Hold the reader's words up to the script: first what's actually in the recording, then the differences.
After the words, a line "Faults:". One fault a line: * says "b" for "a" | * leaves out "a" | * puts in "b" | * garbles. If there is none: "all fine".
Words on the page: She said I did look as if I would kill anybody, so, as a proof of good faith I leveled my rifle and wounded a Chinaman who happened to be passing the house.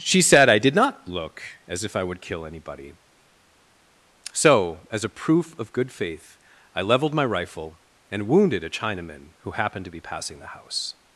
She said I did not look as if I would kill anybody, so, as a proof of good faith I leveled my rifle and wounded a Chinaman who happened to be passing the house.
Faults:
* puts in "not"